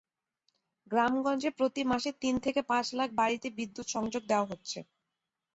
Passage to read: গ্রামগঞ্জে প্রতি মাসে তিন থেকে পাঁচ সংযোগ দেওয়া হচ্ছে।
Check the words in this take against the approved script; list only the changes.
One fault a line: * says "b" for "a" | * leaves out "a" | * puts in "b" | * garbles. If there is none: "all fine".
* puts in "লাখ বাড়িতে বিদ্যুৎ"